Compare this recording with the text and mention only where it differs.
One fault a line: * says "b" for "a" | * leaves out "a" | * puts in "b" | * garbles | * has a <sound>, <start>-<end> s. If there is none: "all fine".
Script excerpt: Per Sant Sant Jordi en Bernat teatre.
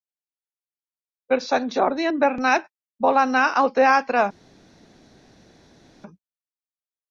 * leaves out "Sant"
* puts in "vol anar al"